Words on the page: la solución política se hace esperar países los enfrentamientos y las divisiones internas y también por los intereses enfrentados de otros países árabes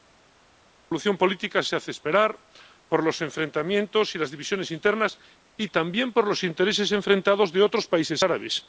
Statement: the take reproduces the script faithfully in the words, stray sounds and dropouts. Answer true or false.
false